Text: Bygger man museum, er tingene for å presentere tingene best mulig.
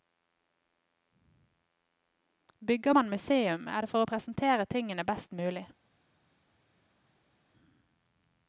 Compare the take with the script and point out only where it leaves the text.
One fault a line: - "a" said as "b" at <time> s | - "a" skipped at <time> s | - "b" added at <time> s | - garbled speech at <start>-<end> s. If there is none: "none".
- "tingene" said as "det" at 3.8 s